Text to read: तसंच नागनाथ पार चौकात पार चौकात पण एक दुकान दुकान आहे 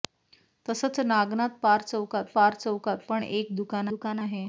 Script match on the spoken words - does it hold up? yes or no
yes